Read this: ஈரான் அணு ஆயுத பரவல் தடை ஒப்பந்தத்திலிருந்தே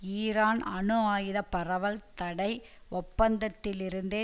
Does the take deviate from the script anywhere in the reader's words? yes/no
no